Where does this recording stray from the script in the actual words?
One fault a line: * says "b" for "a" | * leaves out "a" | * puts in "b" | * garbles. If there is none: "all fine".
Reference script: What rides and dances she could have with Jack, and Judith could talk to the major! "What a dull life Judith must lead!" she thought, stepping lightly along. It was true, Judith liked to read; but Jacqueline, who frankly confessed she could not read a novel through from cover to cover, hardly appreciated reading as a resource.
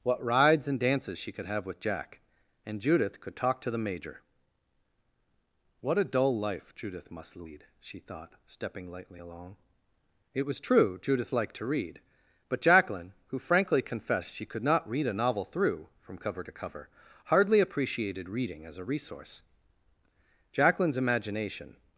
* puts in "Jacqueline's imagination"